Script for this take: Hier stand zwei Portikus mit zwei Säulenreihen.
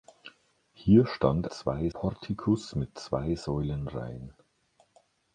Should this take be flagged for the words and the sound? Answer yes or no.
no